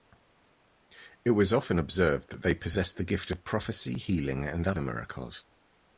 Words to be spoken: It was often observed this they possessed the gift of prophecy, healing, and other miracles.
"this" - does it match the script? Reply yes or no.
no